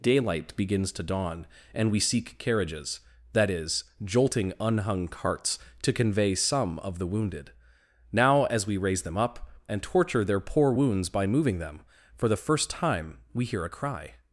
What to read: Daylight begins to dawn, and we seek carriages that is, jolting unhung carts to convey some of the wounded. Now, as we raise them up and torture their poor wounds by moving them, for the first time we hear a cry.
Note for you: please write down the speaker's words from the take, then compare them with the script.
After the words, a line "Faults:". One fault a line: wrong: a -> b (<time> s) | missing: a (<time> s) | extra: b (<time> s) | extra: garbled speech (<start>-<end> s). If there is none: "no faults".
Daylight begins to dawn, and we seek carriages that is, jolting unhung carts to convey some of the wounded. Now, as we raise them up and torture their poor wounds by moving them, for the first time we hear a cry.
Faults:
no faults